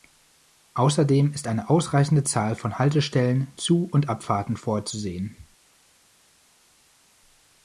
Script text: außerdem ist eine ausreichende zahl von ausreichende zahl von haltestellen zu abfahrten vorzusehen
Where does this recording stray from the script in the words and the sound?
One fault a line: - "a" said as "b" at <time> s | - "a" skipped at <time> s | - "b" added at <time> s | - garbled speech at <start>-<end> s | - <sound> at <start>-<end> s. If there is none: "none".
- "ausreichende zahl von" skipped at 2.8 s
- "und" added at 3.9 s